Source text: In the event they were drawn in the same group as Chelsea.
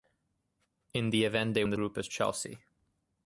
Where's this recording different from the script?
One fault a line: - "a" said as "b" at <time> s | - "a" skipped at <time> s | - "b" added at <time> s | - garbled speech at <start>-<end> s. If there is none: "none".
- "were drawn" skipped at 1.6 s
- "same" skipped at 1.8 s